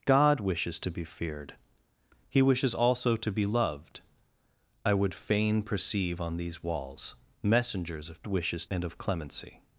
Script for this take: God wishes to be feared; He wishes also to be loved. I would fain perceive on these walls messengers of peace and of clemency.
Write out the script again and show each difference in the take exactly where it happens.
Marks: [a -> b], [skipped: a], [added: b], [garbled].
God wishes to be feared; He wishes also to be loved. I would fain perceive on these walls messengers of [peace -> wishes] and of clemency.